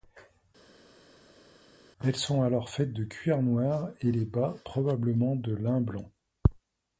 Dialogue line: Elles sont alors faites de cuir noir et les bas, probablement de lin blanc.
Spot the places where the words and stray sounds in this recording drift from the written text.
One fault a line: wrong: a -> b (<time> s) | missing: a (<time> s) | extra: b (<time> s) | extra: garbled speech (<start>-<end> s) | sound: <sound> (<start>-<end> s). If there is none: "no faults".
no faults